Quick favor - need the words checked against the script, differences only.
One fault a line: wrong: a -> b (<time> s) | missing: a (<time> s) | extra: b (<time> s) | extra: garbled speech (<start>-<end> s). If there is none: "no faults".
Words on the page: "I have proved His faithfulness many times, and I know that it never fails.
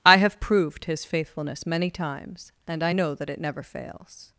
no faults